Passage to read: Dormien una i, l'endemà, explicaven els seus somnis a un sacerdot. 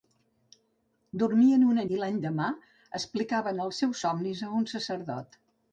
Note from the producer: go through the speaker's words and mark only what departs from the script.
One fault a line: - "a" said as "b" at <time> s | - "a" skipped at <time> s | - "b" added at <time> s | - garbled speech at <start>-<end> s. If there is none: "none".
none